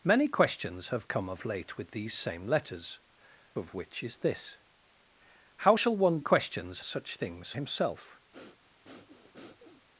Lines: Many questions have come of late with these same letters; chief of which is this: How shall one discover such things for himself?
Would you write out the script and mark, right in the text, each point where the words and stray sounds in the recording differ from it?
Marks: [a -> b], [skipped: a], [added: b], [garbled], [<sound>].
Many questions have come of late with these same letters; [skipped: chief] of which is this: How shall one [discover -> questions] such things [skipped: for] himself? [breath]